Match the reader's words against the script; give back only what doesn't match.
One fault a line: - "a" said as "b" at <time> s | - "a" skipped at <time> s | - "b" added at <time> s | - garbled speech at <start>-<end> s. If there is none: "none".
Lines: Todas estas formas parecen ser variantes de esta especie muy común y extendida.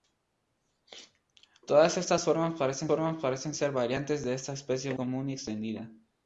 - "formas parecen" added at 2.9 s
- "muy" skipped at 4.9 s